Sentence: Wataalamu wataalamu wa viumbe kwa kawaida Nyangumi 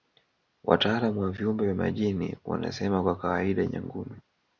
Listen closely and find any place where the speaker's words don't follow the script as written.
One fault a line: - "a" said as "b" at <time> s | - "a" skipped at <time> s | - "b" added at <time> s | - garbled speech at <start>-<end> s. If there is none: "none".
- "wataalamu" skipped at 1.2 s
- "vya majini wanasema" added at 1.6 s